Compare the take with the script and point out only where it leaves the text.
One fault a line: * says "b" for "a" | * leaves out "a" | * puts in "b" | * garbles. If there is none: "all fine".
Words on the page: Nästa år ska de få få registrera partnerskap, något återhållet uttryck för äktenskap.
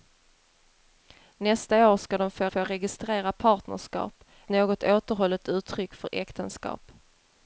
all fine